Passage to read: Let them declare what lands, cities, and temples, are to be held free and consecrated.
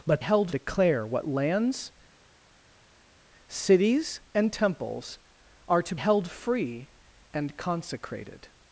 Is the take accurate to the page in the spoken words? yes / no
no